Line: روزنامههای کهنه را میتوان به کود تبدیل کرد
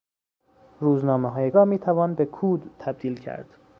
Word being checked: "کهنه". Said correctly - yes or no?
no